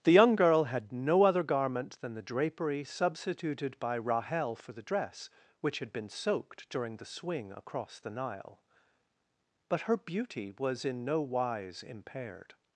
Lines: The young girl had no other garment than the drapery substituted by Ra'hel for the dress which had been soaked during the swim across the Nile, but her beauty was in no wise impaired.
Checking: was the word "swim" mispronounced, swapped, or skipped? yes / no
yes